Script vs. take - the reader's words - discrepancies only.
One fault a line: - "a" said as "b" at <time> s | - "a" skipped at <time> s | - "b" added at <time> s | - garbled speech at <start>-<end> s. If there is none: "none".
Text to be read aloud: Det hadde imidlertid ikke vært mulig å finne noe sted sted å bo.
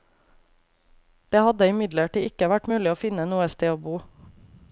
- "sted" skipped at 3.7 s